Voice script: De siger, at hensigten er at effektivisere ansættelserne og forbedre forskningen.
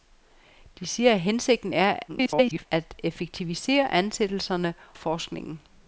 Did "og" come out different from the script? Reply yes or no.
yes